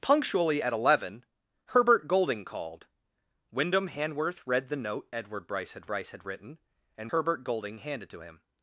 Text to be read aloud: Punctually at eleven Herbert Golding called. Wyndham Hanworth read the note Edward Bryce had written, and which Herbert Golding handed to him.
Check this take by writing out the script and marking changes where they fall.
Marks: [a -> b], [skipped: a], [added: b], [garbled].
Punctually at eleven Herbert Golding called. Wyndham Hanworth read the note Edward Bryce had [added: Bryce had] written, and [skipped: which] Herbert Golding handed to him.